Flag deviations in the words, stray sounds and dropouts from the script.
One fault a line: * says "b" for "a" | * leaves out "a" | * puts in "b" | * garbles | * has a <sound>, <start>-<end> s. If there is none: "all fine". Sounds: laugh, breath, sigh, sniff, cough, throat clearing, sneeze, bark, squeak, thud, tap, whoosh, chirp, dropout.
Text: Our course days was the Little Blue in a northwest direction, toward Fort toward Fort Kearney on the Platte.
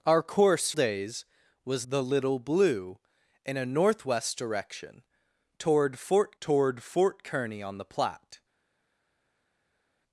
all fine